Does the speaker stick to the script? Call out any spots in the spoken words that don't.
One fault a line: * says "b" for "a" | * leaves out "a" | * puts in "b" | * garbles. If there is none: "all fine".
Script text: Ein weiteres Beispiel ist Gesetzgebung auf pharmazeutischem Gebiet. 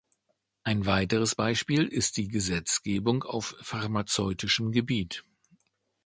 * puts in "die"